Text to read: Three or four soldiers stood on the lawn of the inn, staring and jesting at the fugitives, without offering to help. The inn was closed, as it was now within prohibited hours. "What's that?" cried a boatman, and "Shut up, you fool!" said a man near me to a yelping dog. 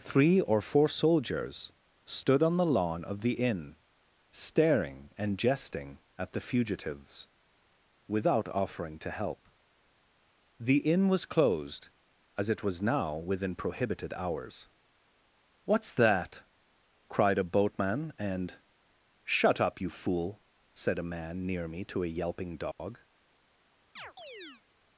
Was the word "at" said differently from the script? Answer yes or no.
no